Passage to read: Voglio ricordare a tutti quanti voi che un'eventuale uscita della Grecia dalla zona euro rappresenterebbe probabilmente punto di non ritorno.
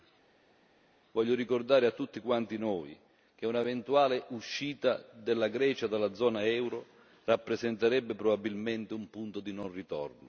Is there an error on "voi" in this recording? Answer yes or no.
yes